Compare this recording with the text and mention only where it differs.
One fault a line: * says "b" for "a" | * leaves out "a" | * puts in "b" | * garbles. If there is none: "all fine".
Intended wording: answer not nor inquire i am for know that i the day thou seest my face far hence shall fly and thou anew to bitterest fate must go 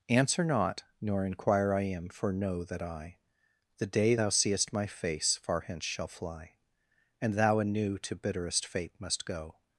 all fine